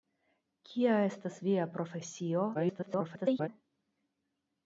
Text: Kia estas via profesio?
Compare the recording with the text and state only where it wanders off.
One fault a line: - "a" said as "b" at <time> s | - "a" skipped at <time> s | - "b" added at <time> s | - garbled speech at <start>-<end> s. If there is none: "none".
- garbled speech at 2.5-3.5 s